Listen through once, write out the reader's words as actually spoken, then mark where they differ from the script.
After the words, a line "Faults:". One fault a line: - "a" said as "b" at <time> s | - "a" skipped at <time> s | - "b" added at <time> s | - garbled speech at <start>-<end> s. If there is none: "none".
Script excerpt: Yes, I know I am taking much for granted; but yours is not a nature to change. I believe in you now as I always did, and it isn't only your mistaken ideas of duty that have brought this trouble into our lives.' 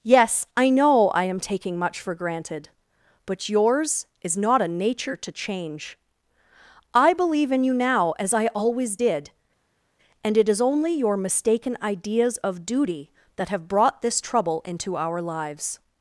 Yes, I know I am taking much for granted; but yours is not a nature to change. I believe in you now as I always did, and it is only your mistaken ideas of duty that have brought this trouble into our lives.'
Faults:
- "isn't" said as "is" at 10.5 s